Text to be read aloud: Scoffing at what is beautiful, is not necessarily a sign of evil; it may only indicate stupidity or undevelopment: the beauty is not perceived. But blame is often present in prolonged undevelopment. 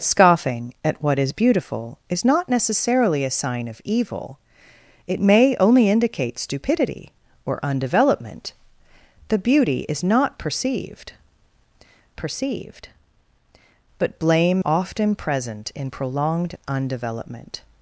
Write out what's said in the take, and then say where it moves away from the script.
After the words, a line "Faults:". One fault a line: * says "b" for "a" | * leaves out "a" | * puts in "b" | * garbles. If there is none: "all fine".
Scoffing at what is beautiful, is not necessarily a sign of evil; it may only indicate stupidity or undevelopment: the beauty is not perceived perceived. But blame often present in prolonged undevelopment.
Faults:
* puts in "perceived"
* leaves out "is"